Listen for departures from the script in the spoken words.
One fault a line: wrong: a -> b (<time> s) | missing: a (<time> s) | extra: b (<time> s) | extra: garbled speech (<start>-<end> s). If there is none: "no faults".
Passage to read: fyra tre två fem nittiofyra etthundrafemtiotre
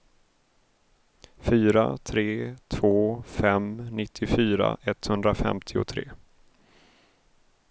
no faults